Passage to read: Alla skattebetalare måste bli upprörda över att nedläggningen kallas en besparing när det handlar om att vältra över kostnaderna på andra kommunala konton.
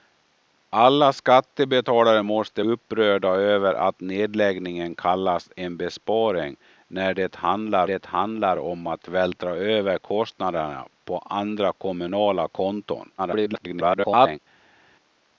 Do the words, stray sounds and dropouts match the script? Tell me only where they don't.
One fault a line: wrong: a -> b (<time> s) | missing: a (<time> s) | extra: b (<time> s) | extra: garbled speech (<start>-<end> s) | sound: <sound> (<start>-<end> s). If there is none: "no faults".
missing: bli (2.6 s)
extra: det handlar (7.8 s)
extra: garbled speech (13.2-14.4 s)